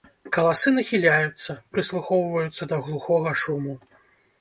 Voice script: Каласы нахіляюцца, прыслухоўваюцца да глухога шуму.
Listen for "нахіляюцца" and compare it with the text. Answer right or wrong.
right